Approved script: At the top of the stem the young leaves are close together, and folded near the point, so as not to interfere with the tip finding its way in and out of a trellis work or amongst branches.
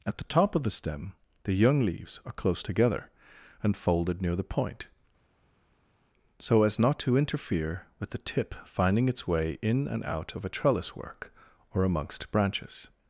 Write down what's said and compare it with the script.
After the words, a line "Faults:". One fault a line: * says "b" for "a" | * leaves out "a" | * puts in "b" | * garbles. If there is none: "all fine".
At the top of the stem the young leaves are close together, and folded near the point, so as not to interfere with the tip finding its way in and out of a trellis work or amongst branches.
Faults:
all fine